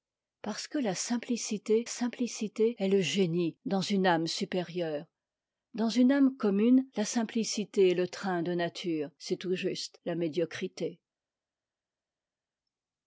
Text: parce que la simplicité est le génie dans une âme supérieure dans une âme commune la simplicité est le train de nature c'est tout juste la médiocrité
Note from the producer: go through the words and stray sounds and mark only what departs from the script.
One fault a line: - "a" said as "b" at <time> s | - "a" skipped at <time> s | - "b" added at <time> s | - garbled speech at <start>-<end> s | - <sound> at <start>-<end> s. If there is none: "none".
- "simplicité" added at 1.9 s